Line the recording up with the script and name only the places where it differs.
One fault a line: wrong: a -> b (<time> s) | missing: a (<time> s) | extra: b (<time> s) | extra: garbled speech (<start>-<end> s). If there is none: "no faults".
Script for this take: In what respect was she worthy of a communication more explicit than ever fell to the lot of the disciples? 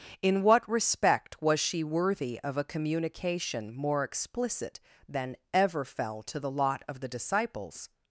no faults